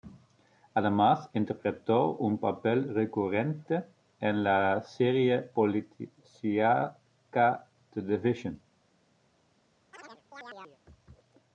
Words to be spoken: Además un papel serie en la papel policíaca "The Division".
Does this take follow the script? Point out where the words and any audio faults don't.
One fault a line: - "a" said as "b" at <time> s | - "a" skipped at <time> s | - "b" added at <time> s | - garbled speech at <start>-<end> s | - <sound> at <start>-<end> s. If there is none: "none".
- "interpretó" added at 1.3 s
- "serie" said as "recurrente" at 2.9 s
- "papel" said as "serie" at 4.8 s
- chirp at 9.9-10.8 s